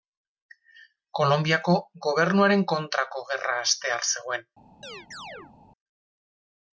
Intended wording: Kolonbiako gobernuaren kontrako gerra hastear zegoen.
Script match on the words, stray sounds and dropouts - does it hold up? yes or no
no